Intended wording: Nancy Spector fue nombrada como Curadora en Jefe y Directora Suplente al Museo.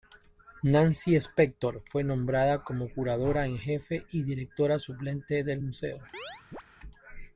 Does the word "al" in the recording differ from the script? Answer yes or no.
yes